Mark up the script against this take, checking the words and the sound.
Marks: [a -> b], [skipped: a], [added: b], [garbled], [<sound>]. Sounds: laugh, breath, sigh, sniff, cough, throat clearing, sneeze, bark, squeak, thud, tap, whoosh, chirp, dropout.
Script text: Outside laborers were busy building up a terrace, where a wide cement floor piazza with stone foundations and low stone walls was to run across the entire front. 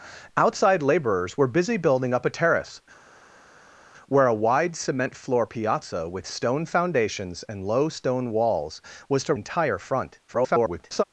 Outside laborers were busy building up a terrace, where a wide cement floor piazza with stone foundations and low stone walls was to [skipped: run across the] entire front. [garbled]